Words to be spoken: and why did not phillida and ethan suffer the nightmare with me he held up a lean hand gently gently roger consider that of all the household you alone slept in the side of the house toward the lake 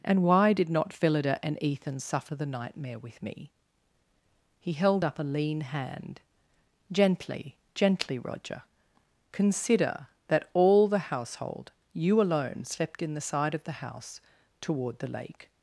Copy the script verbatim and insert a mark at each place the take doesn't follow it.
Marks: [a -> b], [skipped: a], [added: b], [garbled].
and why did not phillida and ethan suffer the nightmare with me he held up a lean hand gently gently roger consider that [skipped: of] all the household you alone slept in the side of the house toward the lake